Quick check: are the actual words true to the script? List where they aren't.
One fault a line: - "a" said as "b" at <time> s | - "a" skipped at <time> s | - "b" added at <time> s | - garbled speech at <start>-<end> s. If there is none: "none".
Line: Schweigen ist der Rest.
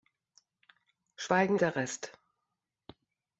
- "ist" skipped at 1.6 s